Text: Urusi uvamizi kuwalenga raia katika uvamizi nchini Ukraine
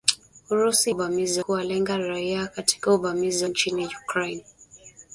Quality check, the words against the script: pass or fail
pass